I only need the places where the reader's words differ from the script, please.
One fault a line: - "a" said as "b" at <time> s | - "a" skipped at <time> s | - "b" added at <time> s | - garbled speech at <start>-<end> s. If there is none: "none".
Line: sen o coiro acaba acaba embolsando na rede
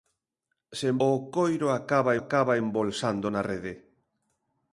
none